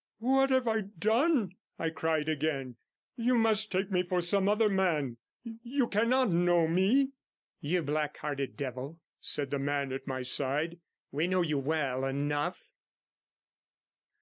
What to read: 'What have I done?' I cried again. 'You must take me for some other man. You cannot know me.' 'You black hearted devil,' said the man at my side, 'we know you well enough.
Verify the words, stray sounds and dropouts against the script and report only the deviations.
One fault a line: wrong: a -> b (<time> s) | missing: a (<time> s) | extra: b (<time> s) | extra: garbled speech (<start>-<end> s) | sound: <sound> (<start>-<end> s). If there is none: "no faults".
no faults